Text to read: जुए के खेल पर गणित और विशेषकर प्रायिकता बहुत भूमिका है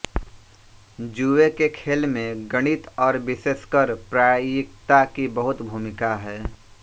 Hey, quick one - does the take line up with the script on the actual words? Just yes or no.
no